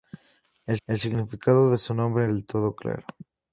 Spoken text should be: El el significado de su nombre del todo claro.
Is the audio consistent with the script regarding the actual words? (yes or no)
yes